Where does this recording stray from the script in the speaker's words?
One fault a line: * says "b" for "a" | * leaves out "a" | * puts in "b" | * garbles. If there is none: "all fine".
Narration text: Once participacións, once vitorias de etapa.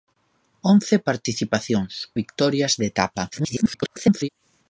* leaves out "once"
* garbles